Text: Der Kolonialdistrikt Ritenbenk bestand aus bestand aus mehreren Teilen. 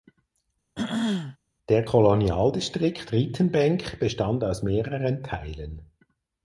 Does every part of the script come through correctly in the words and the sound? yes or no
no